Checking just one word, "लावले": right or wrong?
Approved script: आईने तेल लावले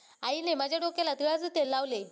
right